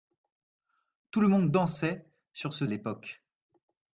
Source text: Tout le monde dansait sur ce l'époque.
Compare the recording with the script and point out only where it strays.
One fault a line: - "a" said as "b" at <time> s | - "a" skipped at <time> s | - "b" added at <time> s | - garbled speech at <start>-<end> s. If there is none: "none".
none